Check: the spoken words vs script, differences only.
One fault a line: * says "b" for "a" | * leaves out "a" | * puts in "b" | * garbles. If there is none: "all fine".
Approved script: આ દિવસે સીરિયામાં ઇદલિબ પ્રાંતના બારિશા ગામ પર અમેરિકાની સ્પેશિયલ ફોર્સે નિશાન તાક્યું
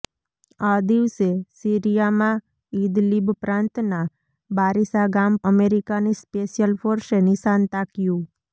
* leaves out "પર"